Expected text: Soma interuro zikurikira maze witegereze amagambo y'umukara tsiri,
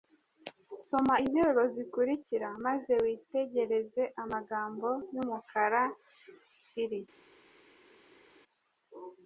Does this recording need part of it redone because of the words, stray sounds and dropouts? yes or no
no